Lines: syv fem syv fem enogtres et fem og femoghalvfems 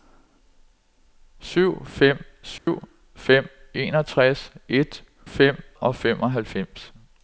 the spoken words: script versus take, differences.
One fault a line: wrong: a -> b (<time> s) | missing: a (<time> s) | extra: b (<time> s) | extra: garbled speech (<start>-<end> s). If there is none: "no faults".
no faults